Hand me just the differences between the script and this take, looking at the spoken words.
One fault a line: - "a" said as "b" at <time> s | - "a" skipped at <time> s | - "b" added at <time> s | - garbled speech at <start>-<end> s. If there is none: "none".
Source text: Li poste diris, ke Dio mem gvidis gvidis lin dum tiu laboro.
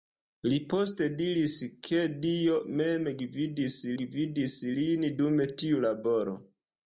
none